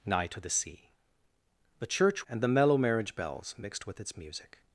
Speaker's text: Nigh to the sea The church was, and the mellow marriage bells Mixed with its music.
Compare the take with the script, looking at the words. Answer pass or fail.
fail